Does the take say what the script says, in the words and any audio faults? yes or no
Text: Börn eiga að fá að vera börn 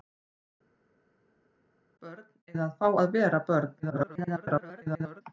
no